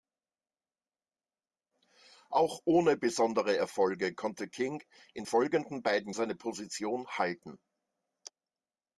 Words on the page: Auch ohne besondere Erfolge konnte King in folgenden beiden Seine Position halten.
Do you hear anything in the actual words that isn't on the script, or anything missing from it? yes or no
no